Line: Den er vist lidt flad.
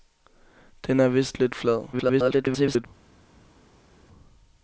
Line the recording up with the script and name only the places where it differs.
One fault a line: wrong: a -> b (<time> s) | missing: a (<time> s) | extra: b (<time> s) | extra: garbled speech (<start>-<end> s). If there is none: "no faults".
extra: garbled speech (1.9-2.9 s)